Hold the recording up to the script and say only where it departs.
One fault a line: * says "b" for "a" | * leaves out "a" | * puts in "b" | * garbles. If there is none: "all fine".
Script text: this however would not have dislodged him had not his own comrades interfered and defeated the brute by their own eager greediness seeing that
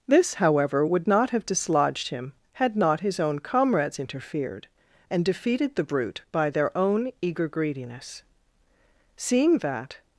all fine